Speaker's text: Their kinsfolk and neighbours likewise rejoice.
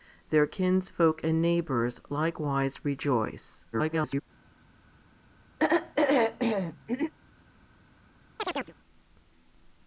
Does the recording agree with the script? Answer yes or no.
no